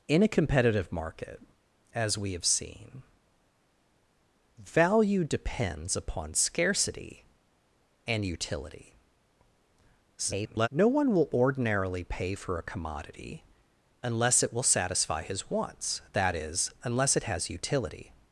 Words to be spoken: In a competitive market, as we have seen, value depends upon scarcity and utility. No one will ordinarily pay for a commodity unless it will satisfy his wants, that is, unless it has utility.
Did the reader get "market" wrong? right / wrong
right